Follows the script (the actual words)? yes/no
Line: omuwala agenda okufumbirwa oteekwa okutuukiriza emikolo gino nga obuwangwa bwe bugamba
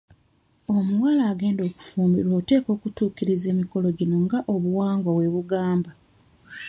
yes